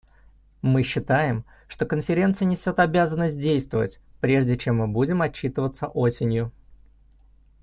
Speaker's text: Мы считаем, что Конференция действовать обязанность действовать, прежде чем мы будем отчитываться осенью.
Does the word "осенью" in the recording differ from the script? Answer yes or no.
no